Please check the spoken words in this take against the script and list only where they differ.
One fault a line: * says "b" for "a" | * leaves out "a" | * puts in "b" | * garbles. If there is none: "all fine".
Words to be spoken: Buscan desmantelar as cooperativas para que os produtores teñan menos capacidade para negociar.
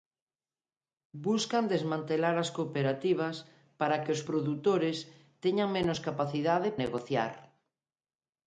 * leaves out "para"